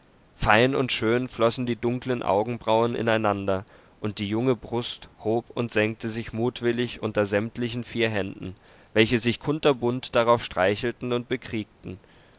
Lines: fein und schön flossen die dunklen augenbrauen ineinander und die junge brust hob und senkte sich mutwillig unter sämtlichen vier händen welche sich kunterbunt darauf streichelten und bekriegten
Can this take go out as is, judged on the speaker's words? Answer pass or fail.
pass